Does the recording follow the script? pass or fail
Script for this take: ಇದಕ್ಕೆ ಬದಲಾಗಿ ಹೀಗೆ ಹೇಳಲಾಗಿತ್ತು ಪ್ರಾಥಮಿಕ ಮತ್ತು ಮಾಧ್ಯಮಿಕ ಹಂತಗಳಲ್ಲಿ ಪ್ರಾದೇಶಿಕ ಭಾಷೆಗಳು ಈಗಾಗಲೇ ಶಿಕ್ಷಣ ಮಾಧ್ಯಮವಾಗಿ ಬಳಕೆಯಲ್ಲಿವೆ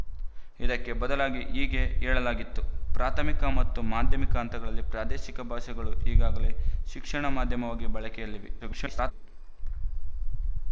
fail